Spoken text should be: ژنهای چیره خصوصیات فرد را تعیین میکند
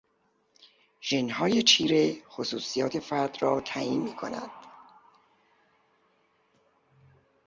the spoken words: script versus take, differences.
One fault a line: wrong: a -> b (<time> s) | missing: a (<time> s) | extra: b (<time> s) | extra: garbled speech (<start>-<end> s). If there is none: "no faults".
no faults